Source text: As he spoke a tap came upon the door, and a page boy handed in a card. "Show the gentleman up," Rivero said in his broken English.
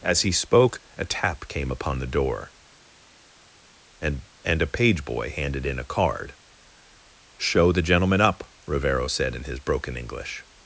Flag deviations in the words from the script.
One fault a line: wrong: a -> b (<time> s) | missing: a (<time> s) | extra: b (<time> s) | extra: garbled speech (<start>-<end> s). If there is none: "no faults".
extra: and (4.4 s)